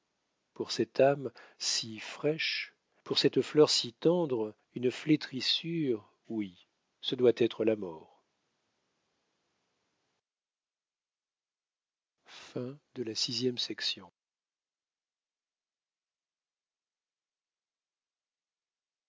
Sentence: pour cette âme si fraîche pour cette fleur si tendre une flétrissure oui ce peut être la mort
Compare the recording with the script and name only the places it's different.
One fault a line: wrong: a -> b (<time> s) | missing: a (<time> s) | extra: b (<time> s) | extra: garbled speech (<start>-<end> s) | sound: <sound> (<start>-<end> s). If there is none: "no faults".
wrong: peut -> doit (7.2 s)